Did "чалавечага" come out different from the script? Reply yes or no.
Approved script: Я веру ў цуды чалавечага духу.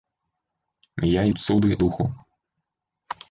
yes